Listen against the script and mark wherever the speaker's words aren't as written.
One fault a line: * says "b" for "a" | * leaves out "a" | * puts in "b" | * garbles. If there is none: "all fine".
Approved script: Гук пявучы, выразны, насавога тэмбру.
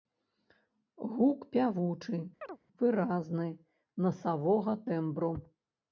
all fine